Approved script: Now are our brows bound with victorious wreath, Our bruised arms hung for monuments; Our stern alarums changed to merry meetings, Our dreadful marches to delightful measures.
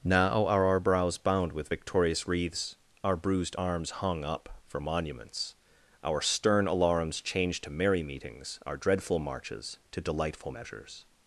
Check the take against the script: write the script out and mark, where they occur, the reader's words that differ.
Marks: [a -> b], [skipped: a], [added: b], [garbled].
Now are our brows bound with victorious [wreath, -> wreaths] Our bruised arms hung [added: up] for monuments; Our stern alarums changed to merry meetings, Our dreadful marches to delightful measures.